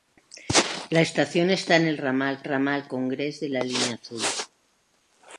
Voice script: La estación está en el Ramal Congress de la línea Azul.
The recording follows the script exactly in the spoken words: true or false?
false